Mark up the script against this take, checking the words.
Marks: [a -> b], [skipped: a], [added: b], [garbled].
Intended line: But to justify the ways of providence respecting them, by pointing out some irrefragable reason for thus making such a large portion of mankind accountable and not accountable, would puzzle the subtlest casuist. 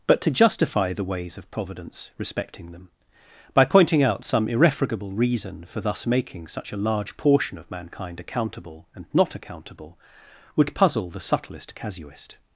But to justify the ways of providence respecting them, by pointing out some irrefragable reason for thus making such a large portion of mankind accountable and not accountable, would puzzle the subtlest casuist.